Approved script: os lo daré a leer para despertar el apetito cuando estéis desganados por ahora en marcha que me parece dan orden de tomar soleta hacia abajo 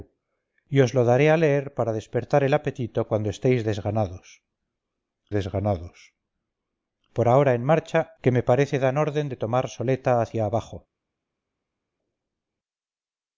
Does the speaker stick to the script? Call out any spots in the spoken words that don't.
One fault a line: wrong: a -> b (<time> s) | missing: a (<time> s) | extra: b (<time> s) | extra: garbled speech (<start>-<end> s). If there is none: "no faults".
extra: desganados (5.4 s)